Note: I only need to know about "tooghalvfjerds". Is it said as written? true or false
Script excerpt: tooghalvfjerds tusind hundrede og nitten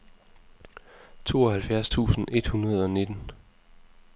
true